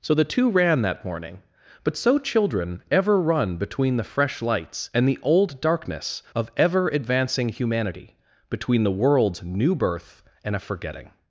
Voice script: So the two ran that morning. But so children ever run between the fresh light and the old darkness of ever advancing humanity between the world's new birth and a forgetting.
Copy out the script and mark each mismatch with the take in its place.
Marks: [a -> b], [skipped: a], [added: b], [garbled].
So the two ran that morning. But so children ever run between the fresh [light -> lights] and the old darkness of ever advancing humanity between the world's new birth and a forgetting.